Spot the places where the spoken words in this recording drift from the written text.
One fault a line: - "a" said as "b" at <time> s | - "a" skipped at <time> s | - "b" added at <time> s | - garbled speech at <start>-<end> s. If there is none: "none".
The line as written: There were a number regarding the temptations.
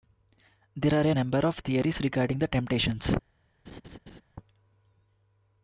- "were" said as "are" at 0.9 s
- "of theories" added at 1.4 s